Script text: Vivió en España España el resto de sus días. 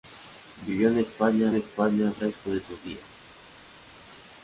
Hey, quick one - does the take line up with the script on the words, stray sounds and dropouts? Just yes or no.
yes